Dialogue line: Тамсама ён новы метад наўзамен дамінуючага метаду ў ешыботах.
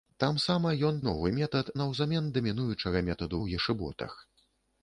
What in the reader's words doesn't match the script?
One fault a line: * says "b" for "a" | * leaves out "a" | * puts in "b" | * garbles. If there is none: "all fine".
all fine